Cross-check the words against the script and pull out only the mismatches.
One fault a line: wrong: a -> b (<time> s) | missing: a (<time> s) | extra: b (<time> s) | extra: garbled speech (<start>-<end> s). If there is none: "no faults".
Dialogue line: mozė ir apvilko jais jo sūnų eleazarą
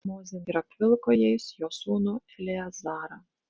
no faults